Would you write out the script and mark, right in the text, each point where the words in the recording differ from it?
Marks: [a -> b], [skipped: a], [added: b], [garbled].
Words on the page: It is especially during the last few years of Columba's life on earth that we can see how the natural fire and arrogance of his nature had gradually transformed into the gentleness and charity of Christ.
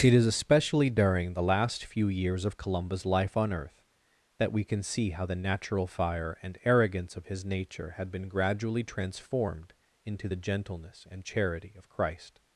It is especially during the last few years of Columba's life on earth that we can see how the natural fire and arrogance of his nature had [added: been] gradually transformed into the gentleness and charity of Christ.